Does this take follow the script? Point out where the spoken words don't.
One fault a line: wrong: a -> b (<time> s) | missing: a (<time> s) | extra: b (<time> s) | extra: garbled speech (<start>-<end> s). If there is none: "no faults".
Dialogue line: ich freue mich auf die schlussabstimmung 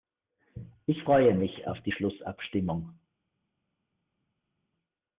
no faults